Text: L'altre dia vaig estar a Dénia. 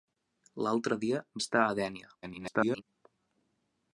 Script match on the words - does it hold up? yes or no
no